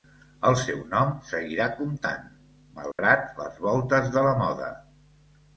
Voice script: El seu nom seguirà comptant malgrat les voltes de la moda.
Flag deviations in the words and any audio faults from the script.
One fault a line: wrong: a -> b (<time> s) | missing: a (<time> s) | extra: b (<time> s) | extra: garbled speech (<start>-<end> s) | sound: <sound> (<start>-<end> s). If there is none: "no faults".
sound: dropout (2.9-3.0 s)